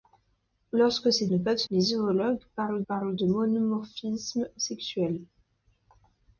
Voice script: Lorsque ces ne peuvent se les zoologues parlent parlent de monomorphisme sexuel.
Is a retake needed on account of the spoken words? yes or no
no